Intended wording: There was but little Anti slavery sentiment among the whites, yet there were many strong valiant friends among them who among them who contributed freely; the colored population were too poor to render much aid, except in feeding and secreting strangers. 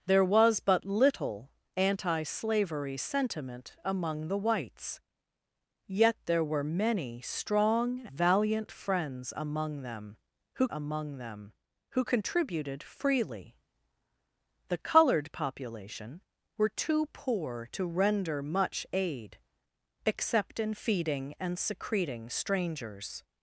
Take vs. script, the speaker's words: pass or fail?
pass